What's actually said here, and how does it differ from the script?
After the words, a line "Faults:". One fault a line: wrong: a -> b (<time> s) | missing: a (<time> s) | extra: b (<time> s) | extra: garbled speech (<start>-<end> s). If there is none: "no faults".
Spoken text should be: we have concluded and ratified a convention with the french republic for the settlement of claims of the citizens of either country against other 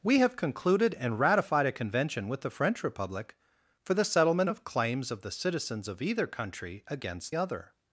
we have concluded and ratified a convention with the french republic for the settlement of claims of the citizens of either country against other
Faults:
no faults